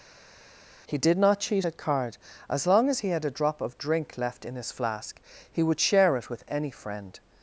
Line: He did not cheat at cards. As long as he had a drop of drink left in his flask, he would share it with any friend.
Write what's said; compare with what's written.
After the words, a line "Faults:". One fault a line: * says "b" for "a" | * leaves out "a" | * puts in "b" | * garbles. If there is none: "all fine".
He did not cheat at card. As long as he had a drop of drink left in his flask, he would share it with any friend.
Faults:
* says "card" for "cards"